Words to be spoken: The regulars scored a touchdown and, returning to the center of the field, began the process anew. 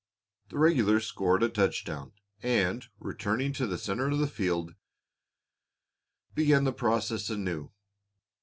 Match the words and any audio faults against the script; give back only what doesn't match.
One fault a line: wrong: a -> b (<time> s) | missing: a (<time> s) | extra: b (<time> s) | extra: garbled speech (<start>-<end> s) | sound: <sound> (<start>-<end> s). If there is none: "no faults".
no faults